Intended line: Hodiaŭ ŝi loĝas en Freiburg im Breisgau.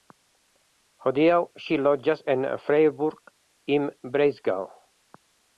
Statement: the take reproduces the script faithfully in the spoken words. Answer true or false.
true